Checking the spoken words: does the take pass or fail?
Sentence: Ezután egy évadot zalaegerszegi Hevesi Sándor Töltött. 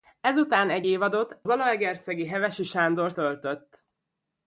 pass